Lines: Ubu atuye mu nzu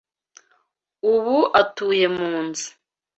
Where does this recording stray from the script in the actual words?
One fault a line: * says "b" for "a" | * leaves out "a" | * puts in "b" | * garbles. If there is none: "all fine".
all fine